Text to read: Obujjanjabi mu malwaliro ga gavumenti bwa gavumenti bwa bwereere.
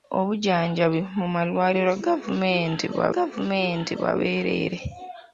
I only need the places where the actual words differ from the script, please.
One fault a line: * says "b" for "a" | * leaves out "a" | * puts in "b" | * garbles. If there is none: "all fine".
all fine